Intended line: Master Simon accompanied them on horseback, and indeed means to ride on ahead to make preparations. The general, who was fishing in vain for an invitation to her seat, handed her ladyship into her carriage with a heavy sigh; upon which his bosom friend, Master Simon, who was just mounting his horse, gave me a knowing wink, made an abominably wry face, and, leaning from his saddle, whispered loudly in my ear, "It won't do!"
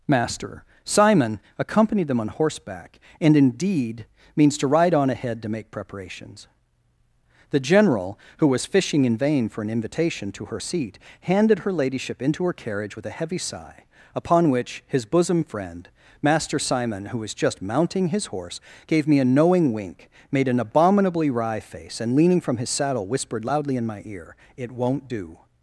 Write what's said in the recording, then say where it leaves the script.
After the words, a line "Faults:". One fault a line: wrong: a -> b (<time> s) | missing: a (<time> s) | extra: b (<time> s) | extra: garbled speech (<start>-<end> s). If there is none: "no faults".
Master Simon accompanied them on horseback, and indeed means to ride on ahead to make preparations. The general, who was fishing in vain for an invitation to her seat, handed her ladyship into her carriage with a heavy sigh; upon which his bosom friend, Master Simon, who was just mounting his horse, gave me a knowing wink, made an abominably wry face, and, leaning from his saddle, whispered loudly in my ear, "It won't do!"
Faults:
no faults